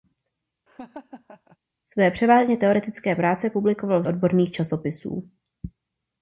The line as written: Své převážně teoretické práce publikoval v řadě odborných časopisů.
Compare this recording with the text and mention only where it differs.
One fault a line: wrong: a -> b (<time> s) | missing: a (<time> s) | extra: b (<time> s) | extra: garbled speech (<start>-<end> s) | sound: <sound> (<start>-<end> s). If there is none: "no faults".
sound: laugh (0.7-1.6 s)
missing: řadě (4.0 s)